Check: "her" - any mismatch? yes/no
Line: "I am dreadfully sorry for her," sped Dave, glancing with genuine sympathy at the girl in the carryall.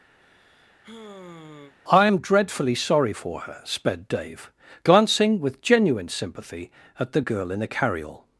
no